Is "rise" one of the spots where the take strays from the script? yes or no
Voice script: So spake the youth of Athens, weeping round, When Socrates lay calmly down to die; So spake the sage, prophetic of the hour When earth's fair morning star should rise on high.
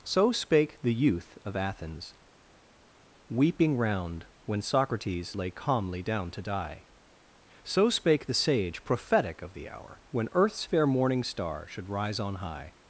no